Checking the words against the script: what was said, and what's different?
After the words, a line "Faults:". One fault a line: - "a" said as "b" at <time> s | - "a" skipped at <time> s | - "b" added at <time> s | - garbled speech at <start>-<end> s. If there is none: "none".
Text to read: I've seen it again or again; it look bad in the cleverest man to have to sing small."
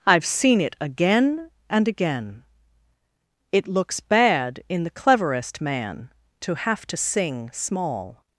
I've seen it again and again; it looks bad in the cleverest man to have to sing small."
Faults:
- "or" said as "and" at 1.7 s
- "look" said as "looks" at 3.7 s